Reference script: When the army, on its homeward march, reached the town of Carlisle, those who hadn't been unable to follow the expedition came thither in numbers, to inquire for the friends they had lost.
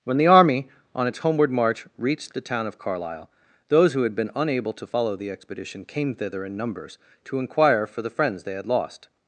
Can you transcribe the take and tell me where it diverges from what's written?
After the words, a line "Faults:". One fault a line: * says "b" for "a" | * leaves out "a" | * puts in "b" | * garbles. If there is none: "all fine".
When the army, on its homeward march, reached the town of Carlisle, those who had been unable to follow the expedition came thither in numbers, to inquire for the friends they had lost.
Faults:
* says "had" for "hadn't"